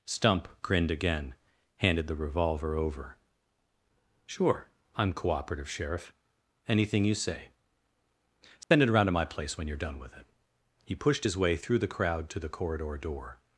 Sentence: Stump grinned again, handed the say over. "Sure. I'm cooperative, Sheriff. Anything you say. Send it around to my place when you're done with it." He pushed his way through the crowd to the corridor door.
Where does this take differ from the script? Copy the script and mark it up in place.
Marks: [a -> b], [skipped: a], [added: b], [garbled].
Stump grinned again, handed the [say -> revolver] over. "Sure. I'm cooperative, Sheriff. Anything you say. Send it around to my place when you're done with it." He pushed his way through the crowd to the corridor door.